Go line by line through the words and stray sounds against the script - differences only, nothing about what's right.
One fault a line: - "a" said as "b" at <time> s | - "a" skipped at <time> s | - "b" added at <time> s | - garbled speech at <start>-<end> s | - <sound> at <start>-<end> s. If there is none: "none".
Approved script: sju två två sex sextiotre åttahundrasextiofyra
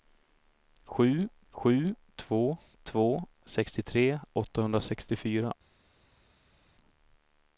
- "sju" added at 1.5 s
- "sex" skipped at 3.3 s